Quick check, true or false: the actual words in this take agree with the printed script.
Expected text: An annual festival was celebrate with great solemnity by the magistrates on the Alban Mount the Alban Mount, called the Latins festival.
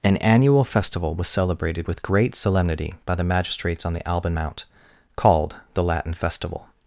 false